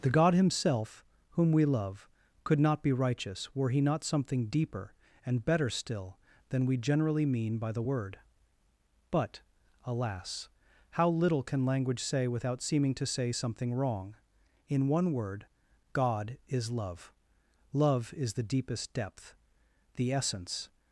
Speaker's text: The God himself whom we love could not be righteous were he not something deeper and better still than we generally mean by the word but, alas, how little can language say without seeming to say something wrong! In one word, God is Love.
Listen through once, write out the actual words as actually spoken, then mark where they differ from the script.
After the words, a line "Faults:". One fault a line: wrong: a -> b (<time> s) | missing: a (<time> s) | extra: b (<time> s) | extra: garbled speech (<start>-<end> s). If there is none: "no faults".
The God himself whom we love could not be righteous were he not something deeper and better still than we generally mean by the word but, alas, how little can language say without seeming to say something wrong! In one word, God is Love. Love is the deepest depth, the essence
Faults:
extra: Love is the deepest depth the essence (17.7 s)